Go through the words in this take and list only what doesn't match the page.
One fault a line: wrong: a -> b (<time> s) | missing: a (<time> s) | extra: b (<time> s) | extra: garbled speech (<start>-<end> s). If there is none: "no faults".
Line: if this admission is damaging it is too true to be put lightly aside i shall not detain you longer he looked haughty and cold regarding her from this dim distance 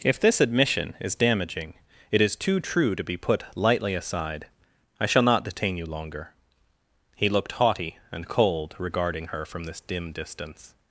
no faults